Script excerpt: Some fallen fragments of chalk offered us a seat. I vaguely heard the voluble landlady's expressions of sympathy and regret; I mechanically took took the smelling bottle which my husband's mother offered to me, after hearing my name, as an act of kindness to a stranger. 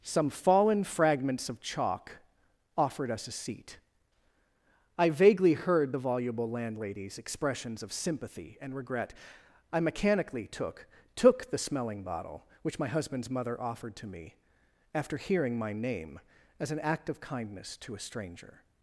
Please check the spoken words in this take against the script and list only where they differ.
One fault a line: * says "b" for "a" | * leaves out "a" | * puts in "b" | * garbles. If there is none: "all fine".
all fine